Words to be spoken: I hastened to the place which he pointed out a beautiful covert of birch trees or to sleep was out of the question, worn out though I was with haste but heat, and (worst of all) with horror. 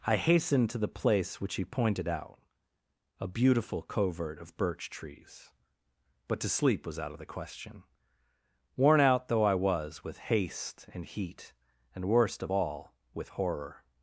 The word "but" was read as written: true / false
false